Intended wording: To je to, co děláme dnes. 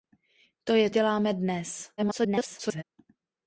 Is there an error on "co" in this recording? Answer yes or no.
yes